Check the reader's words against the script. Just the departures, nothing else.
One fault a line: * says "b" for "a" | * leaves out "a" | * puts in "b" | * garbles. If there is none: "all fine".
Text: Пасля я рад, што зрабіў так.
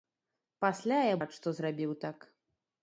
all fine